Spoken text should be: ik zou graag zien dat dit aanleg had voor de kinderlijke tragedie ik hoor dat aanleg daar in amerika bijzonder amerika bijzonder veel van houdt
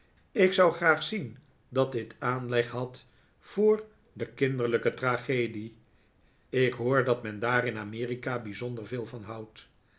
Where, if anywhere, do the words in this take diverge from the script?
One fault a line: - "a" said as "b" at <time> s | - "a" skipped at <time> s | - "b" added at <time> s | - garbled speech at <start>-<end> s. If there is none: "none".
- "aanleg" said as "men" at 7.2 s
- "amerika bijzonder" skipped at 8.9 s